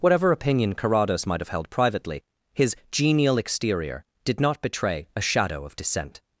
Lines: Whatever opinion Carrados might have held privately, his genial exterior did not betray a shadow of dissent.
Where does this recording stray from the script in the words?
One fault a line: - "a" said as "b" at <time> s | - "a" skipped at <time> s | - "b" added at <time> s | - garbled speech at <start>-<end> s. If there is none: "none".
none